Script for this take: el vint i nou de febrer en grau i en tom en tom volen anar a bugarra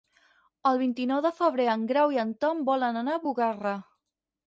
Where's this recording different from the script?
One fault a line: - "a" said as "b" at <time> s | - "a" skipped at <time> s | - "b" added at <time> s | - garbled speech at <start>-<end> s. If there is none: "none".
- "en tom" skipped at 2.7 s